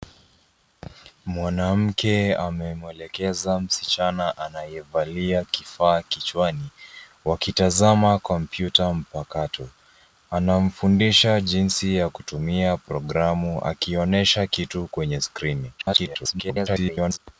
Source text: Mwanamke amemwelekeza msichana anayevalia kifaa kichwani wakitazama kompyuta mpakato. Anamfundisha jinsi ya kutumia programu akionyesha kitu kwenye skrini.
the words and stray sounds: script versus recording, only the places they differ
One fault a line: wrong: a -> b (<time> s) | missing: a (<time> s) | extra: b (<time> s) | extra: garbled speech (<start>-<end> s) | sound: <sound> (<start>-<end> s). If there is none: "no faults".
extra: garbled speech (15.8-17.2 s)